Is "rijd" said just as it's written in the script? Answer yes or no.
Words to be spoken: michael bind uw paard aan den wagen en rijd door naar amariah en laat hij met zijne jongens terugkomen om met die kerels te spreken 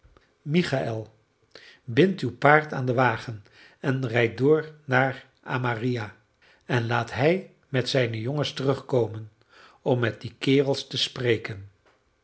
yes